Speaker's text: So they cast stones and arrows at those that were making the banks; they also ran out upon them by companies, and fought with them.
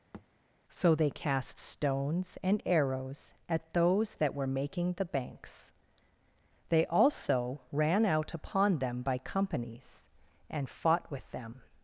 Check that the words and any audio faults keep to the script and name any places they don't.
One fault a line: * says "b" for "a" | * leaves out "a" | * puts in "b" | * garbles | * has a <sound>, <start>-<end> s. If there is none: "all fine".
* has a thud, 0.1-0.3 s